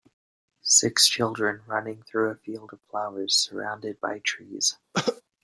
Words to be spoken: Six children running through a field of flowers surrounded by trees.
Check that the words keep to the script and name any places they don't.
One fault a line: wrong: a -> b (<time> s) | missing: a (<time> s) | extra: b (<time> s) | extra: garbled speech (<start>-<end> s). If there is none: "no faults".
no faults